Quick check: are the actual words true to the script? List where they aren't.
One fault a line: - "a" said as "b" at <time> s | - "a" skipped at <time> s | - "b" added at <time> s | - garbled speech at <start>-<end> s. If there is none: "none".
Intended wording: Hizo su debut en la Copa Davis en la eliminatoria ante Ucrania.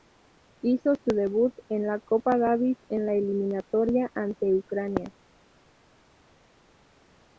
none